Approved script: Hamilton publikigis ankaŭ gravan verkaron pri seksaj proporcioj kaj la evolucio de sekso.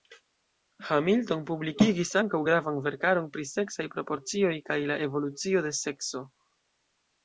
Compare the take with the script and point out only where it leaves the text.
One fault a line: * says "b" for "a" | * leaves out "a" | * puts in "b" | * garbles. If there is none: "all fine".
all fine